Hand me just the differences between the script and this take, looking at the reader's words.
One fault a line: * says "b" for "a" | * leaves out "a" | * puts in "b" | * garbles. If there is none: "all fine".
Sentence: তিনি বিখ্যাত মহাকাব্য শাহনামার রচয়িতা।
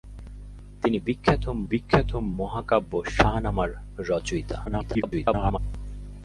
* puts in "বিখ্যাত"
* garbles